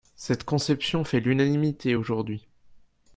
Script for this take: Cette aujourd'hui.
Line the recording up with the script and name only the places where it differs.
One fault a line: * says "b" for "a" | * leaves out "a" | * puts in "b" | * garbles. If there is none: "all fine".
* puts in "conception fait l'unanimité"